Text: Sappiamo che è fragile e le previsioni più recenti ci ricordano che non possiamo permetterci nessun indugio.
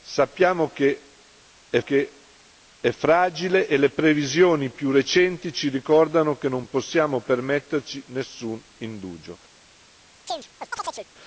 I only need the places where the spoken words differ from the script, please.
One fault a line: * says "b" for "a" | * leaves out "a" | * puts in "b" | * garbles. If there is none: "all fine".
* puts in "che è"